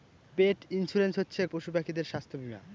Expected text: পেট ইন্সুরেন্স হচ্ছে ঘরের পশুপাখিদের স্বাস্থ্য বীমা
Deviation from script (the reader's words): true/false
true